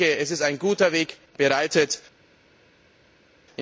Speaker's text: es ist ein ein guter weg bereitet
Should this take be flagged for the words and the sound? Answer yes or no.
yes